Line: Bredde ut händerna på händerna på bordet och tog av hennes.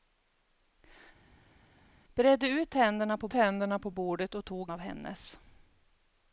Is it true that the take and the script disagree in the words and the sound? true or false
false